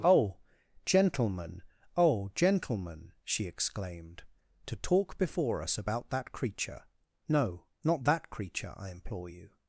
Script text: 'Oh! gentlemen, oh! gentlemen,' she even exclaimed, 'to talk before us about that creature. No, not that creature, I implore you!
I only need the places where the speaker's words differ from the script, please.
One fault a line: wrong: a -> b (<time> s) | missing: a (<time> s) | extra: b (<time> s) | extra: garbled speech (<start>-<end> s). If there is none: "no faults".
missing: even (3.5 s)